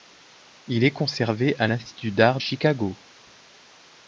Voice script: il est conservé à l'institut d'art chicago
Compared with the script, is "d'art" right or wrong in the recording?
right